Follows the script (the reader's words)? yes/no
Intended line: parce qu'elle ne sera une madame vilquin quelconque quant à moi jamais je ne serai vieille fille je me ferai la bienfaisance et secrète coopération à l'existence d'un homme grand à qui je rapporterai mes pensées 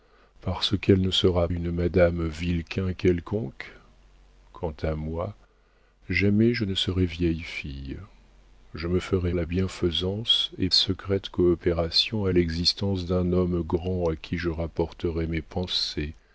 yes